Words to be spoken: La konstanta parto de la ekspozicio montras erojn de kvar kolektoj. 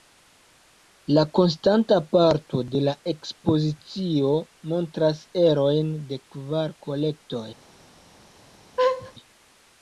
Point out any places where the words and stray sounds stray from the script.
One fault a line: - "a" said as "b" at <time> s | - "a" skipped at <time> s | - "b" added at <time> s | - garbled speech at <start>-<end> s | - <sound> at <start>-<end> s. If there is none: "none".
- laugh at 8.8-9.1 s